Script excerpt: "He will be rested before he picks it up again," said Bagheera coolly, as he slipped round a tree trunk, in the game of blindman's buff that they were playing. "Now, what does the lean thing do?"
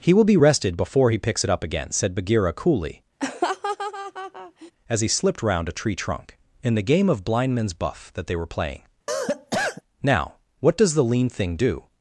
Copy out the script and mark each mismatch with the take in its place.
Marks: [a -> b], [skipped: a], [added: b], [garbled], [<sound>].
"He will be rested before he picks it up again," said Bagheera coolly, [laugh] as he slipped round a tree trunk, in the game of blindman's buff that they were playing. [cough] "Now, what does the lean thing do?"